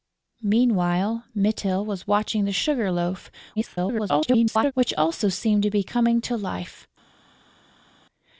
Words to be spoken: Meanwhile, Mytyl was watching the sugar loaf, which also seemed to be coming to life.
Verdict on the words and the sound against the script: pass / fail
fail